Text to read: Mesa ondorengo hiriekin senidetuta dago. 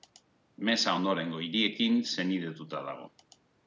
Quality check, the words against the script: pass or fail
pass